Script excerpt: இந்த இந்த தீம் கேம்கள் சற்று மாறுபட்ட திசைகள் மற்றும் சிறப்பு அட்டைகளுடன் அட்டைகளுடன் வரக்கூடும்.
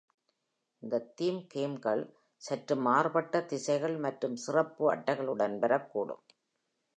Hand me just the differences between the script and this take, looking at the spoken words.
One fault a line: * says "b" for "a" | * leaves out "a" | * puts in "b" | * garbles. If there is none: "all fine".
* leaves out "இந்த"
* leaves out "அட்டைகளுடன்"